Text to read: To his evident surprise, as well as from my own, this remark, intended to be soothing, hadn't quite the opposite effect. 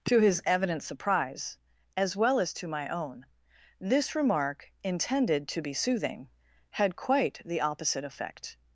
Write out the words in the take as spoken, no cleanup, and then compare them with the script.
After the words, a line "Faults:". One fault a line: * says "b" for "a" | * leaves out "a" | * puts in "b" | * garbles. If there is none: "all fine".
To his evident surprise, as well as to my own, this remark, intended to be soothing, had quite the opposite effect.
Faults:
* says "to" for "from"
* says "had" for "hadn't"